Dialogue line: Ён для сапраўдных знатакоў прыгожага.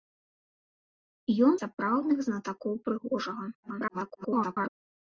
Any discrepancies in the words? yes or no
yes